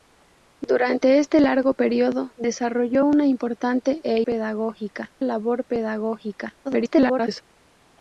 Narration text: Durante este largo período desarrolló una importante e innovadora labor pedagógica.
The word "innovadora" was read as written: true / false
false